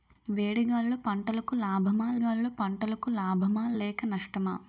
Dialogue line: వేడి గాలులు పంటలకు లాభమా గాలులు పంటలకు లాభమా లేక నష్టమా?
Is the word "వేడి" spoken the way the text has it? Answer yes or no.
yes